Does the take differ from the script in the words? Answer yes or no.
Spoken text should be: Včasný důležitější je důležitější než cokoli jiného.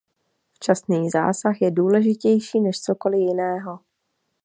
yes